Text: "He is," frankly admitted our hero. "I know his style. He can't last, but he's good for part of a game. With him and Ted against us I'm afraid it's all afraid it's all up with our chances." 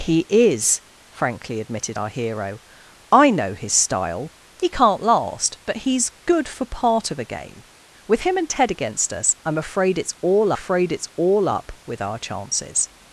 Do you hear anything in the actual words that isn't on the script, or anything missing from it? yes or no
no